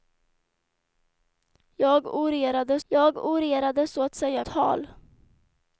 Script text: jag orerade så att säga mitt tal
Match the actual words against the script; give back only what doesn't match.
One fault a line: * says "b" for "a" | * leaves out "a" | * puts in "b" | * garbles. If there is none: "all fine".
* puts in "jag orerade"
* leaves out "mitt"